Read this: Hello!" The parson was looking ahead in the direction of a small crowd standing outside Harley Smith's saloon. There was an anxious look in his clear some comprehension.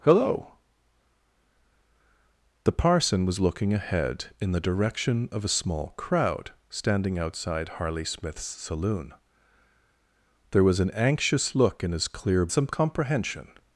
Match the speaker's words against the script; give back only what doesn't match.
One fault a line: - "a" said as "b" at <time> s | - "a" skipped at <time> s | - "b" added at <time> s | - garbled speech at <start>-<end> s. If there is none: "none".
none